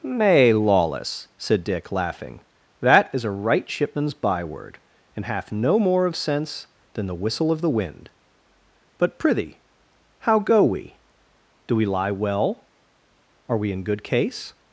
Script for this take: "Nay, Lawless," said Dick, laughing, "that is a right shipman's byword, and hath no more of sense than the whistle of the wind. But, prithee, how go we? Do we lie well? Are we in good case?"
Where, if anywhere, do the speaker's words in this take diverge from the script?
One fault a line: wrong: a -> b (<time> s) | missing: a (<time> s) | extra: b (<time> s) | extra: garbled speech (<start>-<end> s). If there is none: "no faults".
no faults